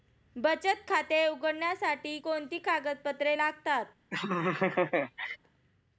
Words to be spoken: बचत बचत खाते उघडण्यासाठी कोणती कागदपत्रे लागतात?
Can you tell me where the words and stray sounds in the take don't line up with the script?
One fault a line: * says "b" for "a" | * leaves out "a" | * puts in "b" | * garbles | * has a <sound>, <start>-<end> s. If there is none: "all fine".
* leaves out "बचत"
* has a laugh, 4.1-5.4 s